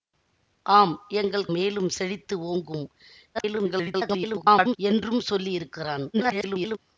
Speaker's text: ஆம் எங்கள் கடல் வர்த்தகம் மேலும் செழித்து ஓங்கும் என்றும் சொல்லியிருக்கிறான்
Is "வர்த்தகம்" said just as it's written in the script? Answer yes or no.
no